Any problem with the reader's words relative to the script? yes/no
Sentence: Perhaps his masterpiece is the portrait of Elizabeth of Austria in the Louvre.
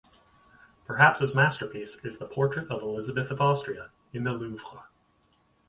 no